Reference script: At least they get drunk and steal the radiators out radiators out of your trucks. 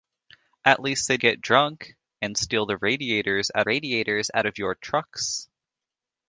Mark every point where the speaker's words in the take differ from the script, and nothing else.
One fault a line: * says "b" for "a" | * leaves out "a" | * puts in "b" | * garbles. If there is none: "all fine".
all fine